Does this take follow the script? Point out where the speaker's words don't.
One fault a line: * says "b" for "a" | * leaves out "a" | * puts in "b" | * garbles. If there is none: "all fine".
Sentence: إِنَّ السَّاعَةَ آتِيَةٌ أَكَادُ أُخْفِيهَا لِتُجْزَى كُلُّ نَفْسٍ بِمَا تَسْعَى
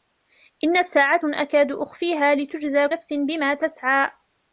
* leaves out "آتِيَةٌ"
* leaves out "كُلُّ"